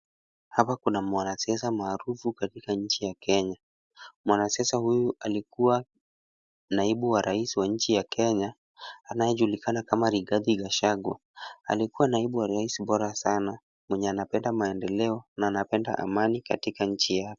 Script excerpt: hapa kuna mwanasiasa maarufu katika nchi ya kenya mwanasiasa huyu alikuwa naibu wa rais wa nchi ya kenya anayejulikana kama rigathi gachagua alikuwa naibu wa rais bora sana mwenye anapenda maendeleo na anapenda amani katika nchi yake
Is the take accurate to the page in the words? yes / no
yes